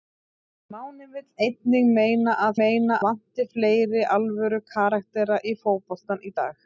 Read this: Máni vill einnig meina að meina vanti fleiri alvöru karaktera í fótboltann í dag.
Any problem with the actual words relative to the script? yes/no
no